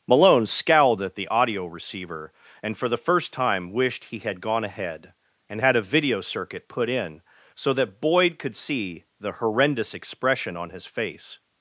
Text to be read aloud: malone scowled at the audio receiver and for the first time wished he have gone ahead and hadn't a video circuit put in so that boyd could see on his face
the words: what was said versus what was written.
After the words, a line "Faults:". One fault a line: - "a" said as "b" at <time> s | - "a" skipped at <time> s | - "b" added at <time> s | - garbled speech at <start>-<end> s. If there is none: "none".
malone scowled at the audio receiver and for the first time wished he had gone ahead and had a video circuit put in so that boyd could see the horrendous expression on his face
Faults:
- "have" said as "had" at 4.2 s
- "hadn't" said as "had" at 5.6 s
- "the horrendous expression" added at 9.2 s